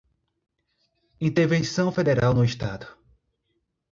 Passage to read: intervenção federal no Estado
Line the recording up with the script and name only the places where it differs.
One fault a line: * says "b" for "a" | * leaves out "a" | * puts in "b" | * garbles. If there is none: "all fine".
all fine